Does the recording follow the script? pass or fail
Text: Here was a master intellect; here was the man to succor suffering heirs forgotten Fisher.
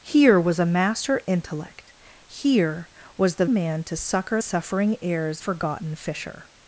pass